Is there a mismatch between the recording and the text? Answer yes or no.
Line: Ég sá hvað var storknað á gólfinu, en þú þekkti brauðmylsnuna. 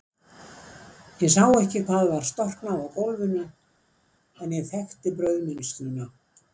yes